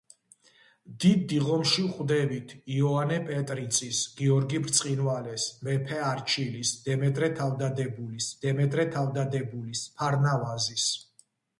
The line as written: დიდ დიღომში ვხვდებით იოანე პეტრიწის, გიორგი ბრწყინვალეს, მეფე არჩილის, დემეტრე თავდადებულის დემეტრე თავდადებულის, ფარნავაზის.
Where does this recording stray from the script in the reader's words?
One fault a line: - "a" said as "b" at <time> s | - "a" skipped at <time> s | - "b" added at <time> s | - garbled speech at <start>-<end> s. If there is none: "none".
none